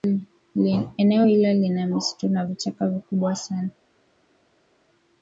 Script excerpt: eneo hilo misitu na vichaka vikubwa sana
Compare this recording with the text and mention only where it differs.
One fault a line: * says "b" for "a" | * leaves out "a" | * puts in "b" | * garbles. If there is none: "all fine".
* puts in "lina"